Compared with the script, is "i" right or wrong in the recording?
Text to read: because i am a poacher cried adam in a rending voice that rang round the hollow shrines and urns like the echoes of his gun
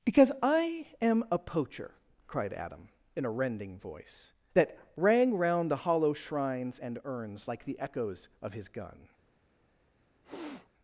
right